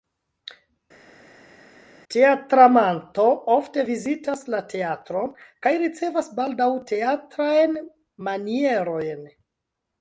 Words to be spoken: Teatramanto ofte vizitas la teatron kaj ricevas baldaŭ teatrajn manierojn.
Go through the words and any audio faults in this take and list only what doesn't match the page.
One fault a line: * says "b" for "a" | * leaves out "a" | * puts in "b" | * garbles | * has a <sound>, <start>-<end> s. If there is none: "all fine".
all fine